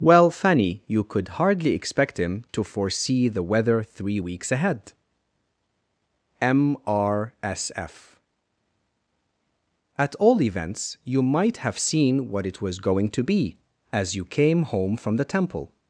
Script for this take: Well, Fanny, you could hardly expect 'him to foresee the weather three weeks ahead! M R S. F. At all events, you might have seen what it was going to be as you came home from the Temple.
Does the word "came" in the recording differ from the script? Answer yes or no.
no